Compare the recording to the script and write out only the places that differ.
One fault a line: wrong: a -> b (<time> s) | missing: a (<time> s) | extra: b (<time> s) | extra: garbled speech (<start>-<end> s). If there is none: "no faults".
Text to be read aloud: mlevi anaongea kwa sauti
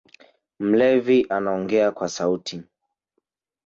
no faults